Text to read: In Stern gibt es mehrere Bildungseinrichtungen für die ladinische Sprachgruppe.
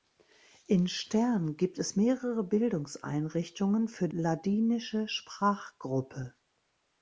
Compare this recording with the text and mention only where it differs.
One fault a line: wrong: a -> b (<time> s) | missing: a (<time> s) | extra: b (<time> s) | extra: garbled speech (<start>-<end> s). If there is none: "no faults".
missing: die (4.1 s)